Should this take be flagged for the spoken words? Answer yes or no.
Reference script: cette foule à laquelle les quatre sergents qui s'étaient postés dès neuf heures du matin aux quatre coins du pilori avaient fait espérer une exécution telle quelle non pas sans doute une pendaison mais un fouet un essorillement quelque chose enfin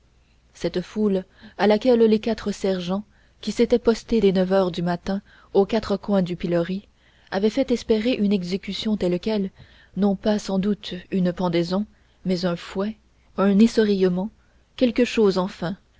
no